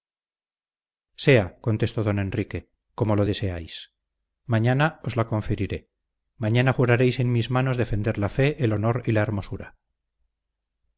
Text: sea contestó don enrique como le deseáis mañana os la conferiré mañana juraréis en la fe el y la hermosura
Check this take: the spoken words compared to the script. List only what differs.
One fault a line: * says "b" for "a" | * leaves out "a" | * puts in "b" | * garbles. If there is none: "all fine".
* says "lo" for "le"
* puts in "mis manos defender"
* puts in "honor"